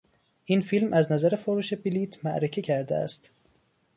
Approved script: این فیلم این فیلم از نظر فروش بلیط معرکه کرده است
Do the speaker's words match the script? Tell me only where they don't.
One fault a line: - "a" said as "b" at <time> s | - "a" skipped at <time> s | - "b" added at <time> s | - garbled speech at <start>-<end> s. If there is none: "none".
- "این فیلم" skipped at 0.9 s